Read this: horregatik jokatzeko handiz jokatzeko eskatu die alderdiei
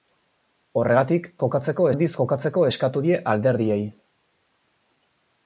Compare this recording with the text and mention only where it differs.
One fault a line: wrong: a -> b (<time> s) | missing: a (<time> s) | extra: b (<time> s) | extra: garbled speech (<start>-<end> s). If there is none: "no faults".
no faults